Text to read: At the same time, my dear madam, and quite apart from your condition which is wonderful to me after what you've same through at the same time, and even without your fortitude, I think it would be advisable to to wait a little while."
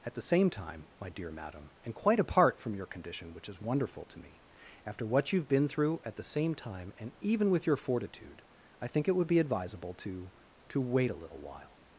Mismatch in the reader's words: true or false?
true